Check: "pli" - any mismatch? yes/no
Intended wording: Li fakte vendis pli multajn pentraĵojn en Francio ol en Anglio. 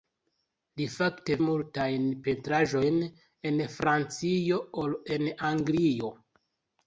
yes